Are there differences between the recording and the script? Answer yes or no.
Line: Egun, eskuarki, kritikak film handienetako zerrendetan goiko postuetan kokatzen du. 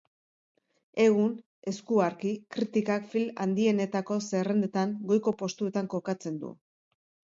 no